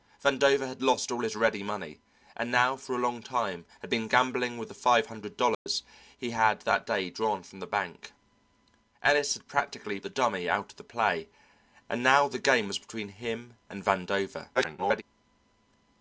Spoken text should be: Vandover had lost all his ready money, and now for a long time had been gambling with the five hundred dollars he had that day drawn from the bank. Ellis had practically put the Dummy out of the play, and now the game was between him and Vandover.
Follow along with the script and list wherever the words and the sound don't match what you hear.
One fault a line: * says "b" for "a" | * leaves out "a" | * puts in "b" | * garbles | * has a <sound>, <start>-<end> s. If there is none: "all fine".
* has a dropout, 5.5-5.7 s
* leaves out "put"
* garbles